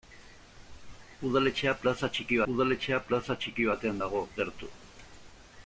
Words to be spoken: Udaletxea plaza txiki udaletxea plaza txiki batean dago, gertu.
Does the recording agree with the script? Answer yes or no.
yes